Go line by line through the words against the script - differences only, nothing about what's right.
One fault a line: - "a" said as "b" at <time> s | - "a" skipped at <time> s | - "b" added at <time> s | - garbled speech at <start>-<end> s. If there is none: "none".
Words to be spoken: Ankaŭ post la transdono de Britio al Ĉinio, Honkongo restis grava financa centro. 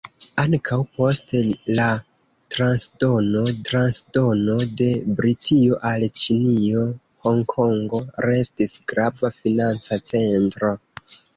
- "transdono" added at 3.7 s